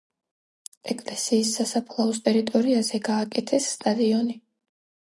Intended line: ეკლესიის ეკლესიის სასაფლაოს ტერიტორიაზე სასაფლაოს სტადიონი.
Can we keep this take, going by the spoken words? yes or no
no